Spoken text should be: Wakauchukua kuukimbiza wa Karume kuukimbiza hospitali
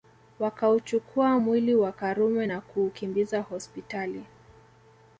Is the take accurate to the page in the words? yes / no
no